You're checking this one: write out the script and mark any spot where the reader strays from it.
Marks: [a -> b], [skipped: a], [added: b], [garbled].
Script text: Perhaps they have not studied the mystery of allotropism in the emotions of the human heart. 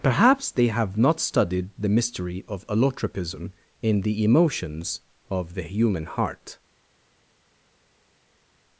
Perhaps they have not studied the mystery of allotropism in the emotions of the human heart.